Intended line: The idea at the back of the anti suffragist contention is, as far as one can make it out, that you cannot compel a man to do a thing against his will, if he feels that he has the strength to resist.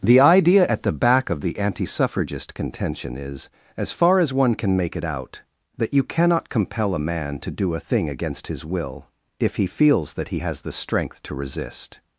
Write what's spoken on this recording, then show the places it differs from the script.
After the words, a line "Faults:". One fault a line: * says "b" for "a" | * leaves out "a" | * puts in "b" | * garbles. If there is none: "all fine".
The idea at the back of the anti suffragist contention is, as far as one can make it out, that you cannot compel a man to do a thing against his will, if he feels that he has the strength to resist.
Faults:
all fine